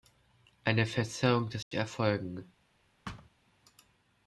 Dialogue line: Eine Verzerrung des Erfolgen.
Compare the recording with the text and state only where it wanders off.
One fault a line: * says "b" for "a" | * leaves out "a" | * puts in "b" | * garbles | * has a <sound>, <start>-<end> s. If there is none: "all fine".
* has a dropout, 1.6-1.7 s
* has a thud, 3.1-3.3 s